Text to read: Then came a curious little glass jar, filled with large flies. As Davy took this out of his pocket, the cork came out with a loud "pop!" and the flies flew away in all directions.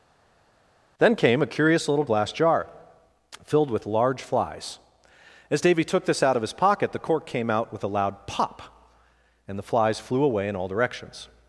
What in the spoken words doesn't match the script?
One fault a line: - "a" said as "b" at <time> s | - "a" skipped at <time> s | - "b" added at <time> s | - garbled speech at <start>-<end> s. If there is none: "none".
none